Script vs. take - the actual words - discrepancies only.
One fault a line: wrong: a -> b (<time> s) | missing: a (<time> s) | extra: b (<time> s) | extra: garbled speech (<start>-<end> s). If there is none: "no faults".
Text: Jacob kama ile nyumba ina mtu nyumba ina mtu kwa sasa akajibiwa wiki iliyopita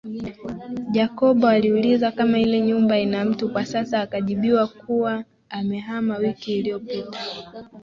extra: aliuliza (1.4 s)
missing: nyumba ina mtu (3.5 s)
extra: kuwa amehama (4.7 s)